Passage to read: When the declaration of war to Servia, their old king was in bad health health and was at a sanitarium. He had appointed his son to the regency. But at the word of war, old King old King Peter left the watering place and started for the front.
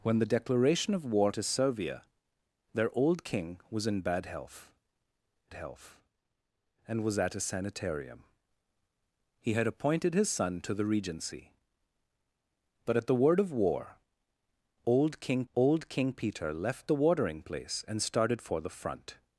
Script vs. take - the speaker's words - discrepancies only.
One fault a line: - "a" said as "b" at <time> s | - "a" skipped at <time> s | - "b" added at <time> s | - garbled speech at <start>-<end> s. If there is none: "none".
none